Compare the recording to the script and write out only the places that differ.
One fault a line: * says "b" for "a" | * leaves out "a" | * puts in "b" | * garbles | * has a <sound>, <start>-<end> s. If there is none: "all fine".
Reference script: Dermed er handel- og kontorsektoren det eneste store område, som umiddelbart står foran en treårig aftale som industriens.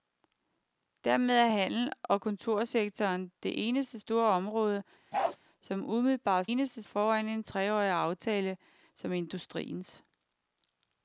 * has a bark, 5.1-5.4 s
* says "eneste" for "står"